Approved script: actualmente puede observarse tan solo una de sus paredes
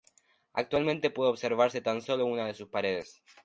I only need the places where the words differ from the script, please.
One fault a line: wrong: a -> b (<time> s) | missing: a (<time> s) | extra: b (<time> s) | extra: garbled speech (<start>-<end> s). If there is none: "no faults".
no faults